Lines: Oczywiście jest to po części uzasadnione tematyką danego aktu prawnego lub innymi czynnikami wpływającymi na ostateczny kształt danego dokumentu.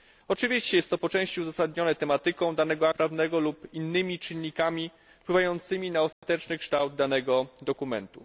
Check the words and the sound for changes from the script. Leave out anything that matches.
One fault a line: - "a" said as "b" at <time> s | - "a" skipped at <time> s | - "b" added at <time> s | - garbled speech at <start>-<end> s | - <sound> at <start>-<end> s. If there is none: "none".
- "aktu" skipped at 2.9 s
- dropout at 6.1-6.2 s